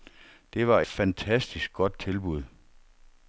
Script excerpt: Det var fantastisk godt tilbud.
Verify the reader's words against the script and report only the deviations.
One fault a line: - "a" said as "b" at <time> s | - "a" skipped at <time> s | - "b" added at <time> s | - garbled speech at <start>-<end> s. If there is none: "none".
none